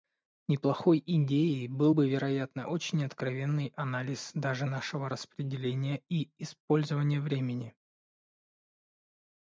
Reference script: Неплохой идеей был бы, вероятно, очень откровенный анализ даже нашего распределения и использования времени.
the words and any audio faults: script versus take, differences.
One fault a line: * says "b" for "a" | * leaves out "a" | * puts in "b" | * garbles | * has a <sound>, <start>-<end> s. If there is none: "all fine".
all fine